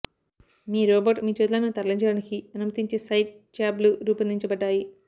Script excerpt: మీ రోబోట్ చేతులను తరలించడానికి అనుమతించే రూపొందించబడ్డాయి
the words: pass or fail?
fail